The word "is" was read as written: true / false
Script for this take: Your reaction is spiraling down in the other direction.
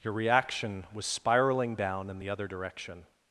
false